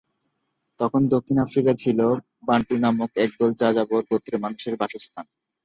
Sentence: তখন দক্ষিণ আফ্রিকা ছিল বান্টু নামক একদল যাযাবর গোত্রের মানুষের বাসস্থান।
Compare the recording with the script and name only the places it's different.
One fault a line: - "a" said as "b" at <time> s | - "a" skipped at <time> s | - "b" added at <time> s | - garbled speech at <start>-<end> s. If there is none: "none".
none